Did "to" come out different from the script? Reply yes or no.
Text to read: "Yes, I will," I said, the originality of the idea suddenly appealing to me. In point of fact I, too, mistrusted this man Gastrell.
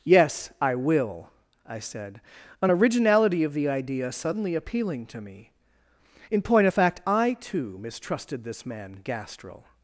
no